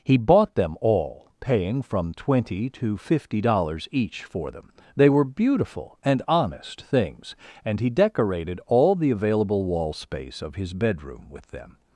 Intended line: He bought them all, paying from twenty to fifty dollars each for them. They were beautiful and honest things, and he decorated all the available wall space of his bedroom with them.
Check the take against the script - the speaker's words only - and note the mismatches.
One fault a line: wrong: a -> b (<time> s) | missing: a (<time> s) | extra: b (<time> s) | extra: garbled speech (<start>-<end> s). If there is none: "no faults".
no faults